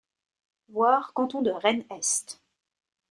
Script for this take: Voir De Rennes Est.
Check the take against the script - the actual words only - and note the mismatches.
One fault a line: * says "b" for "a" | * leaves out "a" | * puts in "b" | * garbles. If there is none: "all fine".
* puts in "Canton"